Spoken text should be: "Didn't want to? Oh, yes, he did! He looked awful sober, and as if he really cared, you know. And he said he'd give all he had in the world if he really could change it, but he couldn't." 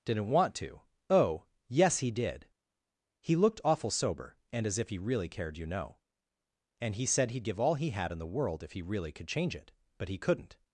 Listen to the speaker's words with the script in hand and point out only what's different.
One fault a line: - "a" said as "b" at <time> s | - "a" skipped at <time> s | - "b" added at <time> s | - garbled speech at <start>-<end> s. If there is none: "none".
none